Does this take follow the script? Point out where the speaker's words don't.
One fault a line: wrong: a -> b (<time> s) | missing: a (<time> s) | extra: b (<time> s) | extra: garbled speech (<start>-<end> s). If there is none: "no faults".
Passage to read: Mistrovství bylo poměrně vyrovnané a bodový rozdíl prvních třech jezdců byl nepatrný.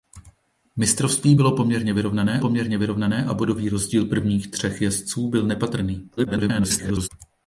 extra: poměrně vyrovnané (2.4 s)
extra: garbled speech (6.2-7.1 s)